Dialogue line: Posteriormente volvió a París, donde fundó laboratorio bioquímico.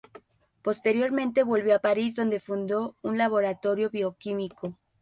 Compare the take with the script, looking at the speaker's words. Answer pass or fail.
fail